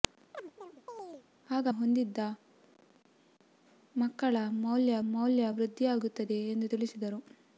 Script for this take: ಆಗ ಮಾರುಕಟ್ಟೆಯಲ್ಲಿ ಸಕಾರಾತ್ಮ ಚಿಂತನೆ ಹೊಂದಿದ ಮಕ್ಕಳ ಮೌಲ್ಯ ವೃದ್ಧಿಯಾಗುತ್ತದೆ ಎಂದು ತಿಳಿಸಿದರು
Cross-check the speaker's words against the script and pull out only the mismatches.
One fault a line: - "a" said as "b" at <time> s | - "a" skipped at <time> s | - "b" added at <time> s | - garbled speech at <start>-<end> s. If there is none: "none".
- "ಮಾರುಕಟ್ಟೆಯಲ್ಲಿ ಸಕಾರಾತ್ಮ ಚಿಂತನೆ" skipped at 1.7 s
- "ಮೌಲ್ಯ" added at 5.1 s